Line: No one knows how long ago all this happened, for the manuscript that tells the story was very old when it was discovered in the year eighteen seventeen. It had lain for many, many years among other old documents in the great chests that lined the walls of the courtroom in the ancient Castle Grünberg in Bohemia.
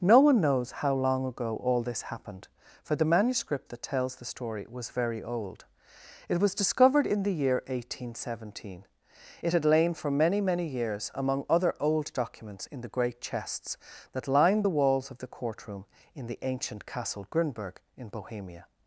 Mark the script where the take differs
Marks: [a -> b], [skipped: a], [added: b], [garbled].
No one knows how long ago all this happened, for the manuscript that tells the story was very old [skipped: when] it was discovered in the year eighteen seventeen. It had lain for many, many years among other old documents in the great chests that lined the walls of the courtroom in the ancient Castle Grünberg in Bohemia.